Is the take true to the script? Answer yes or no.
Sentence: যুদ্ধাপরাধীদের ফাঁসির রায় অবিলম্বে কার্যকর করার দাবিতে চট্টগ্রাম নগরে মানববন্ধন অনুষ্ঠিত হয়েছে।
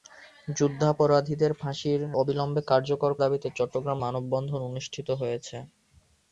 no